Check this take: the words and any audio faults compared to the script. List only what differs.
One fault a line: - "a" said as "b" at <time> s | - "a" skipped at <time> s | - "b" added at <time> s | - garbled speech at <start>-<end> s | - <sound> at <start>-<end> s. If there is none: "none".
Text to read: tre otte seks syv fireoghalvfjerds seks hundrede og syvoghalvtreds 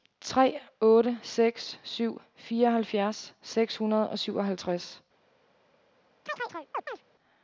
- chirp at 6.3-7.0 s